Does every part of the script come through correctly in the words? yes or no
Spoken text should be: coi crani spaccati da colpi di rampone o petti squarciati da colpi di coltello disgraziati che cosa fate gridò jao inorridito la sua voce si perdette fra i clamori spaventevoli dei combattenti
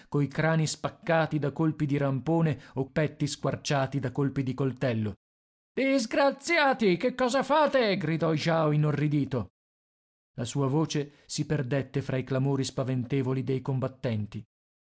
yes